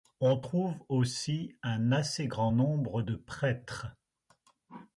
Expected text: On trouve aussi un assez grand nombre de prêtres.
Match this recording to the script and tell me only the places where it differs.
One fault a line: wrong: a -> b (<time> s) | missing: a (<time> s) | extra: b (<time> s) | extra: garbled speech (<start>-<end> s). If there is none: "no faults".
no faults